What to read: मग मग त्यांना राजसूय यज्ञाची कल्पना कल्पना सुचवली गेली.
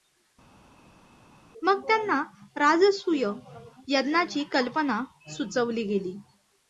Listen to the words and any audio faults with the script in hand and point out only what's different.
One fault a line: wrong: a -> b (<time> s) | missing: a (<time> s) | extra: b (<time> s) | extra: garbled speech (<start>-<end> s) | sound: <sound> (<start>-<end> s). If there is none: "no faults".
missing: मग (1.8 s)
missing: कल्पना (5.0 s)